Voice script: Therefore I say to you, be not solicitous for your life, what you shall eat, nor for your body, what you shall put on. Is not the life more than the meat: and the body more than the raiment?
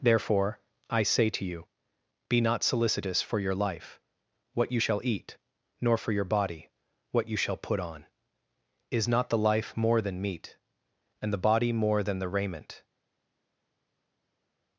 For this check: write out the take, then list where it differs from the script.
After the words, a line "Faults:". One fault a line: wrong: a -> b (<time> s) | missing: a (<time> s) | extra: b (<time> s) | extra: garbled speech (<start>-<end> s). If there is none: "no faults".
Therefore I say to you, be not solicitous for your life, what you shall eat, nor for your body, what you shall put on. Is not the life more than meat: and the body more than the raiment?
Faults:
missing: the (10.2 s)